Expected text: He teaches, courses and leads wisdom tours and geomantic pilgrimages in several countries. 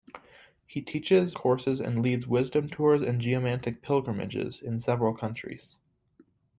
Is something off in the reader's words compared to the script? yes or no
no